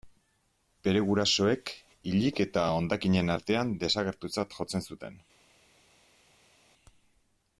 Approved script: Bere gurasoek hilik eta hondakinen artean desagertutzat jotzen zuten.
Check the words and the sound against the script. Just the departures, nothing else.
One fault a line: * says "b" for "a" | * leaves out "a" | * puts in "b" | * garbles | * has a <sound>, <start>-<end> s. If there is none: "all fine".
all fine